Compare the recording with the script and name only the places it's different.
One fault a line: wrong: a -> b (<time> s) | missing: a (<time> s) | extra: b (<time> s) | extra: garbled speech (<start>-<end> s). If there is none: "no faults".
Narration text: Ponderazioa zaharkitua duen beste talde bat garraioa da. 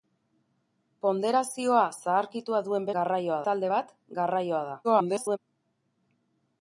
wrong: beste -> garraioa (3.0 s)
extra: garbled speech (4.8-5.4 s)